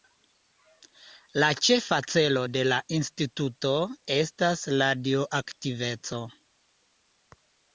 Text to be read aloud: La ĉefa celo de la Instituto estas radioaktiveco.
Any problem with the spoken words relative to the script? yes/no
no